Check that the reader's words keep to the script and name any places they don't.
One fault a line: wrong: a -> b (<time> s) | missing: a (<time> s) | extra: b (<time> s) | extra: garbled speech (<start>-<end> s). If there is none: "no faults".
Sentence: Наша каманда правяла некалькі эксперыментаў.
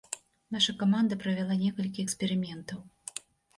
no faults